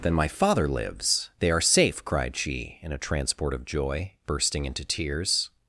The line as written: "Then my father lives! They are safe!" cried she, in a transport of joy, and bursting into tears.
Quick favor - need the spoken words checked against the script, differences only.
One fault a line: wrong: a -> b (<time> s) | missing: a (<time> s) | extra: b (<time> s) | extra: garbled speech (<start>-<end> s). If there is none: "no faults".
missing: and (4.1 s)